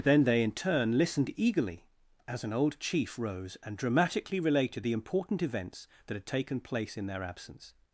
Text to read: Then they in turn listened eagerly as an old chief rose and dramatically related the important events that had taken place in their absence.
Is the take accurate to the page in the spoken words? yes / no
yes